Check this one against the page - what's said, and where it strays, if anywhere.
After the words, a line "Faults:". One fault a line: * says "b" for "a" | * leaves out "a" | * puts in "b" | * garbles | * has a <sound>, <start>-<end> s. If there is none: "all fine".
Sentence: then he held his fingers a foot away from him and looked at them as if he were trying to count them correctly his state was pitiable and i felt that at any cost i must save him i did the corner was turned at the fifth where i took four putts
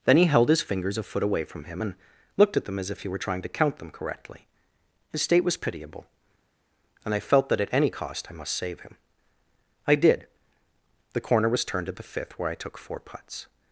then he held his fingers a foot away from him and looked at them as if he were trying to count them correctly his state was pitiable and i felt that at any cost i must save him i did the corner was turned at the fifth where i took four putts
Faults:
all fine